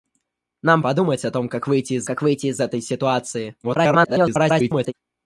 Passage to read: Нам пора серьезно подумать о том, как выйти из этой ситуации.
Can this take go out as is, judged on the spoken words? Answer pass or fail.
fail